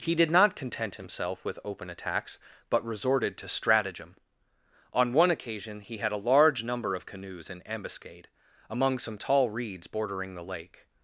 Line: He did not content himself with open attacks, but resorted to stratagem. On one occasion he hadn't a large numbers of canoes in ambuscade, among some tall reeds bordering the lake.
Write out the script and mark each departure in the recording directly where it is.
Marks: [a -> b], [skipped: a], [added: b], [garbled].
He did not content himself with open attacks, but resorted to stratagem. On one occasion he [hadn't -> had] a large [numbers -> number] of canoes in ambuscade, among some tall reeds bordering the lake.